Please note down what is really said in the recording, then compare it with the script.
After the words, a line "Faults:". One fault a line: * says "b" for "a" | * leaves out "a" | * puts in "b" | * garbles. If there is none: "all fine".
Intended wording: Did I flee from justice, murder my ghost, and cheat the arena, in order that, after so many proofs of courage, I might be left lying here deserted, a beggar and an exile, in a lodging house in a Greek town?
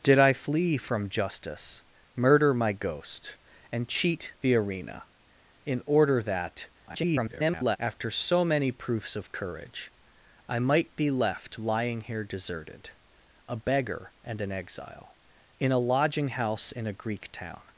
Did I flee from justice, murder my ghost, and cheat the arena, in order that, [garbled] after so many proofs of courage, I might be left lying here deserted, a beggar and an exile, in a lodging house in a Greek town?
Faults:
* garbles